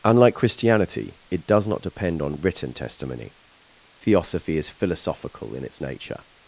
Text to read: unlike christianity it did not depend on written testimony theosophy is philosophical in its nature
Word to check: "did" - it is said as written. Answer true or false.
false